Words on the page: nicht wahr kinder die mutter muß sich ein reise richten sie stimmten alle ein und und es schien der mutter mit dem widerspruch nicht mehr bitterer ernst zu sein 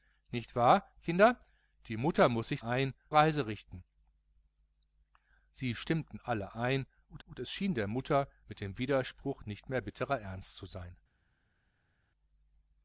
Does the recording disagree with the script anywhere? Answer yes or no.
no